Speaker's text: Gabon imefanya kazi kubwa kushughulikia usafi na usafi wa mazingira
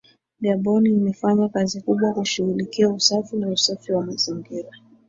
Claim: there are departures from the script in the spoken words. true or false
false